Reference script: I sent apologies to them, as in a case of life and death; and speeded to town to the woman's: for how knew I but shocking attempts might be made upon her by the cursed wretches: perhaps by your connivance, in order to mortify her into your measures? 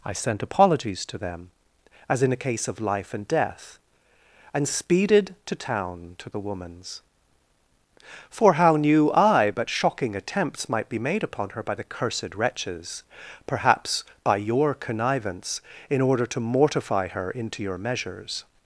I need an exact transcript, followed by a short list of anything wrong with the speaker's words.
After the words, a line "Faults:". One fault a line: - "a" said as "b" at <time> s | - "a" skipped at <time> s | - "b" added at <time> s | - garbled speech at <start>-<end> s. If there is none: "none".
I sent apologies to them, as in a case of life and death; and speeded to town to the woman's: for how knew I but shocking attempts might be made upon her by the cursed wretches: perhaps by your connivance, in order to mortify her into your measures?
Faults:
none